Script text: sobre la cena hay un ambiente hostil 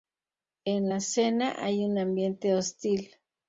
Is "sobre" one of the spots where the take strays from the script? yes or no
yes